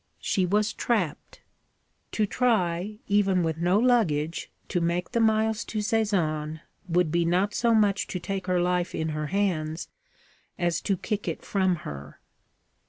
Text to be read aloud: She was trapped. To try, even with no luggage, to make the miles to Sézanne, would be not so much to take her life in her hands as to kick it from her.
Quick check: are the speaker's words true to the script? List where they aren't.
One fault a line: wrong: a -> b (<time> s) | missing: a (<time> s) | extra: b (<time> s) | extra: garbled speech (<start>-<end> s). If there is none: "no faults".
no faults